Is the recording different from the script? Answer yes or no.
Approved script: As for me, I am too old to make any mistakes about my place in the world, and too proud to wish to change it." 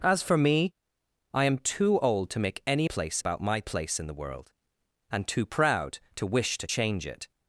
yes